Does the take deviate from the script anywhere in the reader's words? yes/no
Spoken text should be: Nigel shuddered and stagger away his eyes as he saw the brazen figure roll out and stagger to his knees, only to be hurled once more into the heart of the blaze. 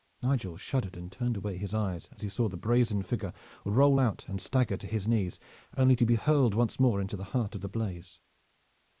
yes